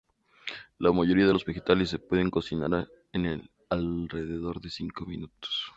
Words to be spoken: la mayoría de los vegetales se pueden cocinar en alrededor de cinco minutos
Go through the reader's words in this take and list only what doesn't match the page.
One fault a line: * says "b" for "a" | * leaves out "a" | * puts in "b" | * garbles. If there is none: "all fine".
all fine